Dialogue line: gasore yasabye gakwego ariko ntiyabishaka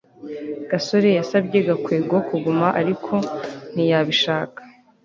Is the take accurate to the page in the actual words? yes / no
no